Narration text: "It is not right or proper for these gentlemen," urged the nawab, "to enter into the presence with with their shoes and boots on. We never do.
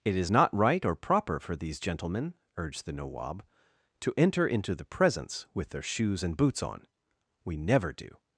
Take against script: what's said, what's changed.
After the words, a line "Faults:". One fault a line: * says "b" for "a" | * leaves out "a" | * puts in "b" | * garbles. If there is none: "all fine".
"It is not right or proper for these gentlemen," urged the nawab, "to enter into the presence with their shoes and boots on. We never do.
Faults:
* leaves out "with"